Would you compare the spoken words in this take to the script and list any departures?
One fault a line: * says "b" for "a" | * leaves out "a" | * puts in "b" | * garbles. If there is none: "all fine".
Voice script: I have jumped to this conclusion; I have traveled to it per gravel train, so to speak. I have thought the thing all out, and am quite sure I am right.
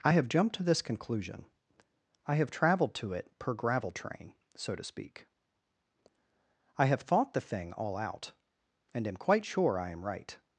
all fine